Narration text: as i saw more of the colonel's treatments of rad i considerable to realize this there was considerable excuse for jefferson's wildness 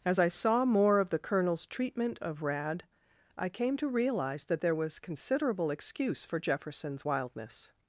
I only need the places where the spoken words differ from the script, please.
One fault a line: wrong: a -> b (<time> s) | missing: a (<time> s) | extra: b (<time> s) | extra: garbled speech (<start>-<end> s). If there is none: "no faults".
wrong: treatments -> treatment (1.7 s)
wrong: considerable -> came (3.5 s)
wrong: this -> that (4.5 s)